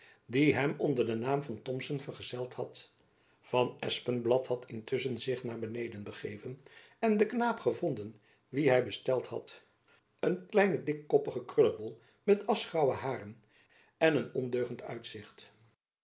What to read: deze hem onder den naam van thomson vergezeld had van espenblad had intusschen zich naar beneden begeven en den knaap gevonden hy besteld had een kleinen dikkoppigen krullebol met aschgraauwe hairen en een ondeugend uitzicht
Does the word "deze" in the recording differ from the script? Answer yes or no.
yes